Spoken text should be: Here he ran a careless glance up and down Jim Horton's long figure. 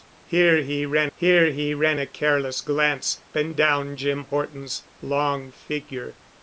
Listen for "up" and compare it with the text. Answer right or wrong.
wrong